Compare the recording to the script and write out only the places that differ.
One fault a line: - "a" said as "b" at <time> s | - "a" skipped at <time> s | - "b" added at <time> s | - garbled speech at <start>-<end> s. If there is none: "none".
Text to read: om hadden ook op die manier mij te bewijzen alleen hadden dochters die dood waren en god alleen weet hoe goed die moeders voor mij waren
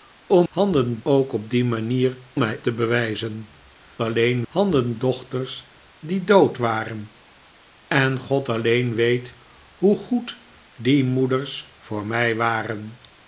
none